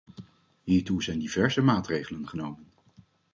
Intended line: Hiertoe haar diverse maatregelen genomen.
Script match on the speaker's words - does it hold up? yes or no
no